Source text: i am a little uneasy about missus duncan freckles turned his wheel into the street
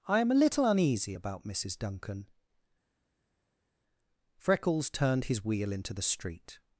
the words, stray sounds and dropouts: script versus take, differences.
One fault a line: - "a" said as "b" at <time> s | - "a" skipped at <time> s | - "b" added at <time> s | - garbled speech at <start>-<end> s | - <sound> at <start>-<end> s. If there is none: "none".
none